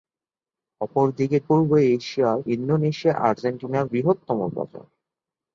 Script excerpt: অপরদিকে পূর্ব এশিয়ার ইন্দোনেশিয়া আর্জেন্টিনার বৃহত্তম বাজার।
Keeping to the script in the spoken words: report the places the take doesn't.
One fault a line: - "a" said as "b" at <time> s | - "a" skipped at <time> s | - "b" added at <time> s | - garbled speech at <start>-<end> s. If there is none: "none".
none